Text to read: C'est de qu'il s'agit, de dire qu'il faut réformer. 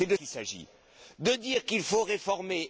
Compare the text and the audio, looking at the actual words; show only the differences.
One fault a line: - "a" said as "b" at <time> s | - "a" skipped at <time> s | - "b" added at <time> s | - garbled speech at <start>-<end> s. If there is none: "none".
none